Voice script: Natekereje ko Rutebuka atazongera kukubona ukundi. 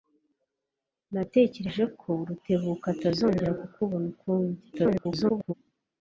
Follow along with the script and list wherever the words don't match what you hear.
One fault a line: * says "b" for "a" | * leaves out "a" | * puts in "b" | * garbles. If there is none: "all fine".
* garbles